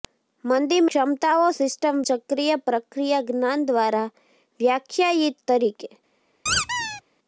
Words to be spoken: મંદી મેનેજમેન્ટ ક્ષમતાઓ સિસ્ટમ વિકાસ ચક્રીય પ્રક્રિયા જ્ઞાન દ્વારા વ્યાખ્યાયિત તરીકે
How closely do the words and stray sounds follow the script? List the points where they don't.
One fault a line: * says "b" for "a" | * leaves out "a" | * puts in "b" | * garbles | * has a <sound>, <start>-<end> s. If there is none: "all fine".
* leaves out "મેનેજમેન્ટ"
* leaves out "વિકાસ"
* has a squeak, 6.5-7.0 s